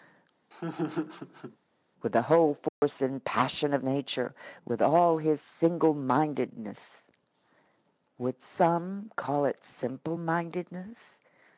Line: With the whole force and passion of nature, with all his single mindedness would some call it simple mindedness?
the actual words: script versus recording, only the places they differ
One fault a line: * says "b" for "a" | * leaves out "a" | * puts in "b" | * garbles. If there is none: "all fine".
all fine